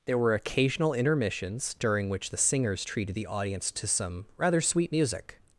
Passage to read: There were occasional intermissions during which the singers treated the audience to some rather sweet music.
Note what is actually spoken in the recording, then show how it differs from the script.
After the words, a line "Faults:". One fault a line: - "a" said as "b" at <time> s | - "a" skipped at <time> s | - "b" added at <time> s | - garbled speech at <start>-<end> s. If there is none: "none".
There were occasional intermissions during which the singers treated the audience to some rather sweet music.
Faults:
none